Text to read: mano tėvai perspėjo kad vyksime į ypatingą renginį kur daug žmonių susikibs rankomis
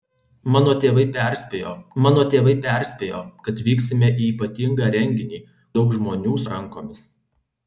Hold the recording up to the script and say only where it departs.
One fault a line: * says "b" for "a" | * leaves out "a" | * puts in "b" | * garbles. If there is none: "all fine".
* puts in "mano tėvai perspėjo"
* leaves out "kur"
* leaves out "susikibs"